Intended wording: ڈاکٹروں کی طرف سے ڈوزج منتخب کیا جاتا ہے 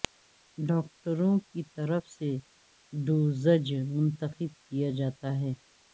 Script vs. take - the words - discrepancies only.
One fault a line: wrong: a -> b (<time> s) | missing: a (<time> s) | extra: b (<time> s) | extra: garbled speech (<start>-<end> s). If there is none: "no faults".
no faults